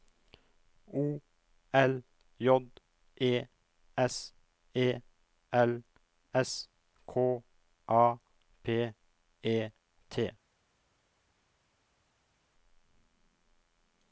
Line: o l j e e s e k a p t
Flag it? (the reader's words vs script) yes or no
yes